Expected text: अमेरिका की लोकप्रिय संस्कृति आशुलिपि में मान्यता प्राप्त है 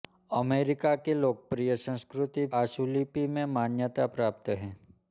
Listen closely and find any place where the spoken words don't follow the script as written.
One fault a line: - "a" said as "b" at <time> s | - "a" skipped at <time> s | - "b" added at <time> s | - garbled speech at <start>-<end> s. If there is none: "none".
none